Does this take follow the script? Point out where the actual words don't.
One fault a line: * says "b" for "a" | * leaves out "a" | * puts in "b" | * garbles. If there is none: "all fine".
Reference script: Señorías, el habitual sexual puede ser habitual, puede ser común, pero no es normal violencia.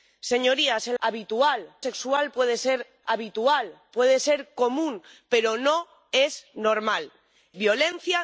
all fine